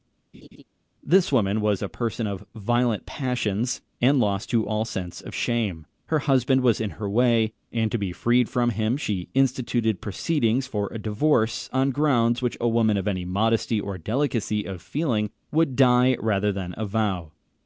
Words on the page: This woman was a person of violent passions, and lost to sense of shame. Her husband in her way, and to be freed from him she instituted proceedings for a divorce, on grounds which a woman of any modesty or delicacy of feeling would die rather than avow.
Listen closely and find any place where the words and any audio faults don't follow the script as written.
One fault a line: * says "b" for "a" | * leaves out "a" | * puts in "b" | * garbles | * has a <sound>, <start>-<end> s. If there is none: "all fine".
* has a laugh, 0.3-0.6 s
* puts in "all"
* puts in "was"